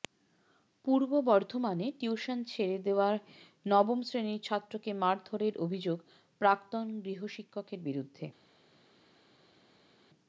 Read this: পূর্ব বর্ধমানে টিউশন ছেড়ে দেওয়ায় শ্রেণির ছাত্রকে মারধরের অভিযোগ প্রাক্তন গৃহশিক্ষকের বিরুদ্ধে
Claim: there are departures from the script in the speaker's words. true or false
true